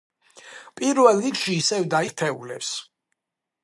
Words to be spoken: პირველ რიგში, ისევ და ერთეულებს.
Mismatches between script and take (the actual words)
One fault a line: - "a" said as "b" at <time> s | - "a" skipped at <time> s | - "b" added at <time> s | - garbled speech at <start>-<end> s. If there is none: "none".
none